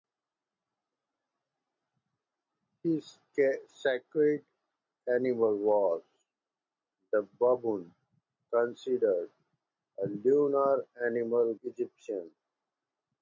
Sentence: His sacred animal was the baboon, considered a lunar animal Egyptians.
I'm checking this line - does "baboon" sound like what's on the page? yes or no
yes